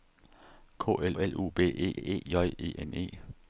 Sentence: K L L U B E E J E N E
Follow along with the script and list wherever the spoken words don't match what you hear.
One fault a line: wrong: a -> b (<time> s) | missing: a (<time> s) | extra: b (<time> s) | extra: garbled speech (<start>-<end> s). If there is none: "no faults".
no faults